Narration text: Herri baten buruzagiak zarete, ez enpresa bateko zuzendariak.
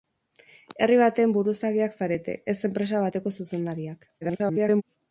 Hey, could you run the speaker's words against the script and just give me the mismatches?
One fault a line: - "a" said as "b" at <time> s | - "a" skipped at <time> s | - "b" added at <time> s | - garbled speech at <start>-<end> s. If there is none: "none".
- garbled speech at 4.2-4.8 s